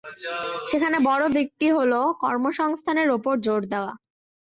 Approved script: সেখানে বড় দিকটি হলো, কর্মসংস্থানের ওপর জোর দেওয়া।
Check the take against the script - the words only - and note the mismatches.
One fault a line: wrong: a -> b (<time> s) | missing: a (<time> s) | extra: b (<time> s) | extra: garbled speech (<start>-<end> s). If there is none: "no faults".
no faults